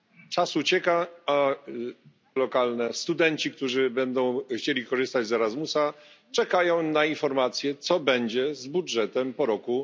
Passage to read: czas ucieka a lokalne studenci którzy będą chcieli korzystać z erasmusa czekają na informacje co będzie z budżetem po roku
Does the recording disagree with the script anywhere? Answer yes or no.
no